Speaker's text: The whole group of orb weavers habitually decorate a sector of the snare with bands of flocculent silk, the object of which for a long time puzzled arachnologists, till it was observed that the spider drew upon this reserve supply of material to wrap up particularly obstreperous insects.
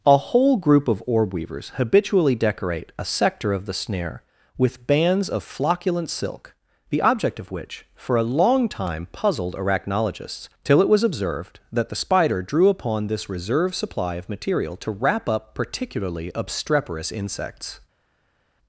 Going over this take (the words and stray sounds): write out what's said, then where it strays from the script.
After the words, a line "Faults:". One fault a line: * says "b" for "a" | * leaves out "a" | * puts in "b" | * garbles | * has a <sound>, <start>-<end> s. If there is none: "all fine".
A whole group of orb weavers habitually decorate a sector of the snare with bands of flocculent silk, the object of which for a long time puzzled arachnologists, till it was observed that the spider drew upon this reserve supply of material to wrap up particularly obstreperous insects.
Faults:
* says "A" for "The"